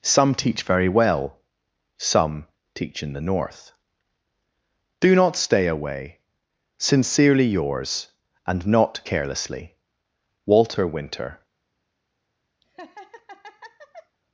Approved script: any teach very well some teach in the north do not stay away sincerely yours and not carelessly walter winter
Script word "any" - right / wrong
wrong